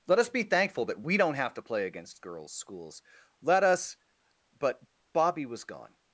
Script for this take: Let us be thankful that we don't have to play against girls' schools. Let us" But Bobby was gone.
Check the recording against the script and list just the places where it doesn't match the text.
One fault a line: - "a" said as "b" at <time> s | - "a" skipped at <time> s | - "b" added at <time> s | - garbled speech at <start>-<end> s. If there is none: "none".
none